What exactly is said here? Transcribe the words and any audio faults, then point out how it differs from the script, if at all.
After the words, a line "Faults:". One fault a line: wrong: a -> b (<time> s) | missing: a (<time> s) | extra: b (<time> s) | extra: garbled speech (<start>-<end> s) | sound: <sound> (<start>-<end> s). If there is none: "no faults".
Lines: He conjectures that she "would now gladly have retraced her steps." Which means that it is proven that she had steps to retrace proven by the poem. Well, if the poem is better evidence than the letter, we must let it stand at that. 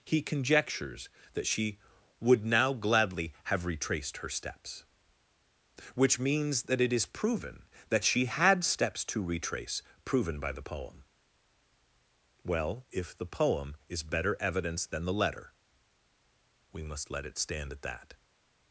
He conjectures that she "would now gladly have retraced her steps." Which means that it is proven that she had steps to retrace proven by the poem. Well, if the poem is better evidence than the letter, we must let it stand at that.
Faults:
no faults